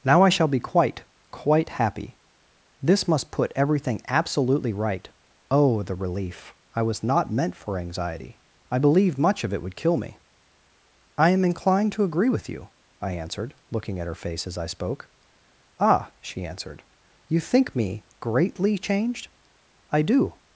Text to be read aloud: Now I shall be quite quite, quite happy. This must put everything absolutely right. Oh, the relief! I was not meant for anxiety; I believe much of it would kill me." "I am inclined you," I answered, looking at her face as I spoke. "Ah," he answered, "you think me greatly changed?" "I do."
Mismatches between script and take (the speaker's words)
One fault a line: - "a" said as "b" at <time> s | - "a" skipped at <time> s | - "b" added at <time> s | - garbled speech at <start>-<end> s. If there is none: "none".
- "quite" skipped at 1.7 s
- "to agree with" added at 11.9 s
- "he" said as "she" at 16.2 s